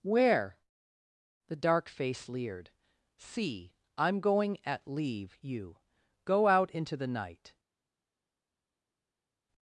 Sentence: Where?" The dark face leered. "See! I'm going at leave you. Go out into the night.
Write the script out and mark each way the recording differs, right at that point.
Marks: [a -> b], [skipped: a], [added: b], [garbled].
Where?" The dark face leered. "See! I'm going at leave you. Go out into the night.